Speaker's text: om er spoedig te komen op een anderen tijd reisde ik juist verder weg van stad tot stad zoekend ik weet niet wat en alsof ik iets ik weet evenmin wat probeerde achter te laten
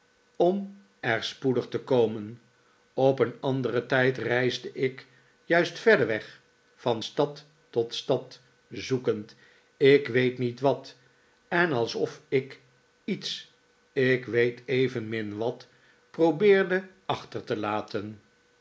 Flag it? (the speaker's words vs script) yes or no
no